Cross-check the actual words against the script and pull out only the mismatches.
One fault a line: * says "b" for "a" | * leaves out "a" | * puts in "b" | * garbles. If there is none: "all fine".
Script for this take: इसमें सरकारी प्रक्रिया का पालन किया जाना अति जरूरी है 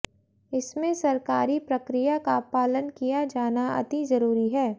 all fine